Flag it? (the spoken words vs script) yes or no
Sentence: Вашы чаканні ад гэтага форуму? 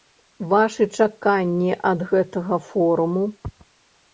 no